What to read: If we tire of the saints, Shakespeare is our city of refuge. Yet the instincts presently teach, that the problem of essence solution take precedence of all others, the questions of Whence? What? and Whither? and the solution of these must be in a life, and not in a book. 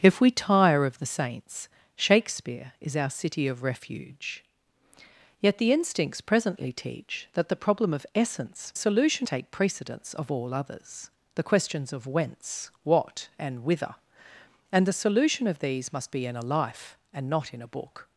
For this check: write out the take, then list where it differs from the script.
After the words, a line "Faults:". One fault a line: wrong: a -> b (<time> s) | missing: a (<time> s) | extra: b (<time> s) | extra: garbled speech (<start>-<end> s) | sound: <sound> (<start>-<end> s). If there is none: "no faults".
If we tire of the saints, Shakespeare is our city of refuge. Yet the instincts presently teach, that the problem of essence solution take precedence of all others, the questions of Whence? What? and Whither? and the solution of these must be in a life, and not in a book.
Faults:
no faults